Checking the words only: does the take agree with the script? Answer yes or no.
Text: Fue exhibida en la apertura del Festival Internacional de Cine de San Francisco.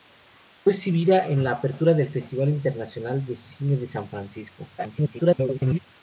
no